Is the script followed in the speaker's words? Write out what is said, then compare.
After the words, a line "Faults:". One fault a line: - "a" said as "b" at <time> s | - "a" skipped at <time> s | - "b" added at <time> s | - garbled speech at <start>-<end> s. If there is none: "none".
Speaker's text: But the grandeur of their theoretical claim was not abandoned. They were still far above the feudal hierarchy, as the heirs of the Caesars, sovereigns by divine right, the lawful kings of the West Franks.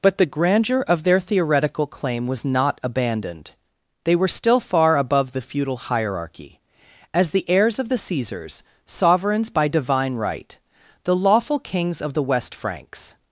But the grandeur of their theoretical claim was not abandoned. They were still far above the feudal hierarchy, as the heirs of the Caesars, sovereigns by divine right, the lawful kings of the West Franks.
Faults:
none